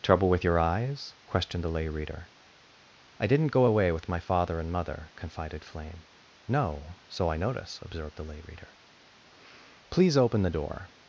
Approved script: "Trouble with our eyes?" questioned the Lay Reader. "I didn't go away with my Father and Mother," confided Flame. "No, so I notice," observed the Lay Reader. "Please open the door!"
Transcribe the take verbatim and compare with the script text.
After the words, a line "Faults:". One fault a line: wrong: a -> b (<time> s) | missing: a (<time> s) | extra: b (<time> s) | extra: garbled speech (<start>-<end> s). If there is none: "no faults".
"Trouble with your eyes?" questioned the Lay Reader. "I didn't go away with my Father and Mother," confided Flame. "No, so I notice," observed the Lay Reader. "Please open the door!"
Faults:
wrong: our -> your (0.4 s)